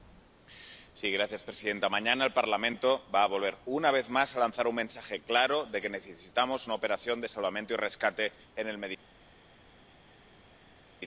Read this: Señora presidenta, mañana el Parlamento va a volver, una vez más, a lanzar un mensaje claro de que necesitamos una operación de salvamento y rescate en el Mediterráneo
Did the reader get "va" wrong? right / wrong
right